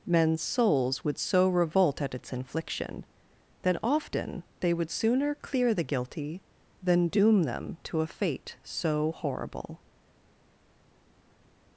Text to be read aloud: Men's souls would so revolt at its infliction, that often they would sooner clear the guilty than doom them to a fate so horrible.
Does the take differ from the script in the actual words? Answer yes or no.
no